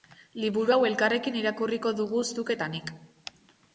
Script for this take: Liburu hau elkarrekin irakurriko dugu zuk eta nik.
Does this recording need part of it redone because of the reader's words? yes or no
no